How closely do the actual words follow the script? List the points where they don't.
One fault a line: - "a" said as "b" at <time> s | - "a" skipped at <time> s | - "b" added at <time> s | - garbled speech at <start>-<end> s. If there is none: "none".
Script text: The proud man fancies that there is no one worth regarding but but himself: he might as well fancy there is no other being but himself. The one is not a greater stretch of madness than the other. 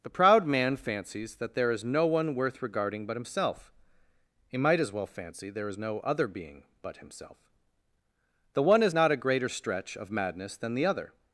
- "but" skipped at 3.1 s